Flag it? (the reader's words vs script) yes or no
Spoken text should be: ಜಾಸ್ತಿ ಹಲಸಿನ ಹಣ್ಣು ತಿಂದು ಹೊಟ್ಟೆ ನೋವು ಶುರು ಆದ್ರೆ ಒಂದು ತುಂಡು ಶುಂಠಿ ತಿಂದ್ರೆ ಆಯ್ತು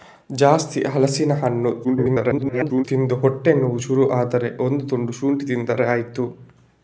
yes